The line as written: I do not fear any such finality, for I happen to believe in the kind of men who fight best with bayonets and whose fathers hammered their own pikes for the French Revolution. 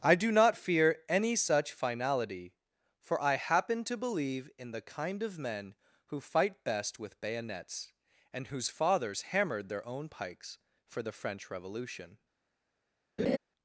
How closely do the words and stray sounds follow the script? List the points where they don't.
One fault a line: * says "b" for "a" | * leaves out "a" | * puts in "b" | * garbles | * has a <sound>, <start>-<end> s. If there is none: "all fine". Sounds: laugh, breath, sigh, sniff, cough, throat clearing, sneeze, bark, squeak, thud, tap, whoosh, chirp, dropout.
* has a laugh, 13.2-13.4 s